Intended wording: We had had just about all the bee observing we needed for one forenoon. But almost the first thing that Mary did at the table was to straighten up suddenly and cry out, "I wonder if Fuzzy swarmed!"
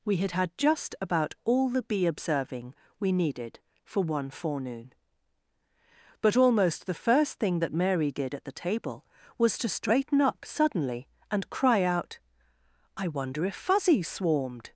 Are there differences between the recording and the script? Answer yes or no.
no